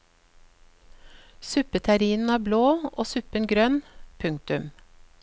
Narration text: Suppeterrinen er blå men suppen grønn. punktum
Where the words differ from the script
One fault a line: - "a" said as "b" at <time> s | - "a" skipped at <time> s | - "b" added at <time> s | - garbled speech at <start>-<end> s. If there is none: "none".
- "men" said as "og" at 2.9 s